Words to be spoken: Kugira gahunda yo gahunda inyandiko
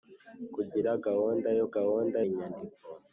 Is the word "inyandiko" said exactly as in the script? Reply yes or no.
yes